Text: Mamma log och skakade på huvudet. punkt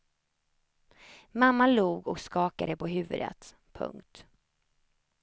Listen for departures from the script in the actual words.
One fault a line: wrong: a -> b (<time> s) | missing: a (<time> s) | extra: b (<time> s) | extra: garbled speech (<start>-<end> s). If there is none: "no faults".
no faults